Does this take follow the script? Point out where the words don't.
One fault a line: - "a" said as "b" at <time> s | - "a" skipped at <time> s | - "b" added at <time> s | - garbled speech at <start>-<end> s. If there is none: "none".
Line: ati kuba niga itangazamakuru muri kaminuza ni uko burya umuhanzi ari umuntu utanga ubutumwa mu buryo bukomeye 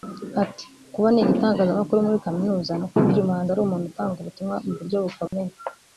none